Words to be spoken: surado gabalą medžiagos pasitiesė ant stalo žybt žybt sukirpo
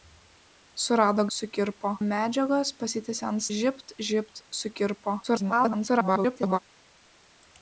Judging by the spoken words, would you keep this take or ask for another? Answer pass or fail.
fail